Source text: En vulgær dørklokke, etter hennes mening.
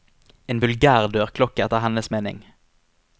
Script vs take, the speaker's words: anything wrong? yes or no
no